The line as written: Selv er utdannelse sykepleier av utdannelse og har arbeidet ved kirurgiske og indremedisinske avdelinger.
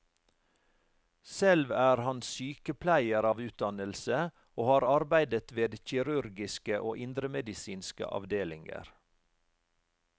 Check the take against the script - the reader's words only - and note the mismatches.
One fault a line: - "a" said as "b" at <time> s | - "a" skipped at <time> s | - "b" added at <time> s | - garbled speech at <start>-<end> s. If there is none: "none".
- "utdannelse" said as "han" at 2.0 s